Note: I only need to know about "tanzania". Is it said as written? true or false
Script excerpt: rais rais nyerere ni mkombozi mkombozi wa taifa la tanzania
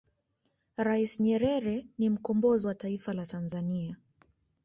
true